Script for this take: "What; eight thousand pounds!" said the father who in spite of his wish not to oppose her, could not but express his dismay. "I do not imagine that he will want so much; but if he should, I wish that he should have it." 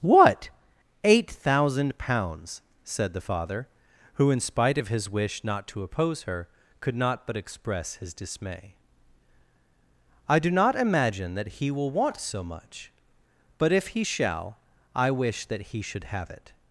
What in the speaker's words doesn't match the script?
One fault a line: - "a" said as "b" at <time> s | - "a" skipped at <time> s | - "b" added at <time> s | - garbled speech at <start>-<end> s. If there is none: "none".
- "should" said as "shall" at 14.0 s